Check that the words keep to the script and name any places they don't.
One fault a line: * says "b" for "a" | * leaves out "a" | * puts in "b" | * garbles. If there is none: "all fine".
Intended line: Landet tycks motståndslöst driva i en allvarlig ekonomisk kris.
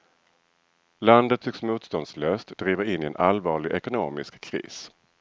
* puts in "in"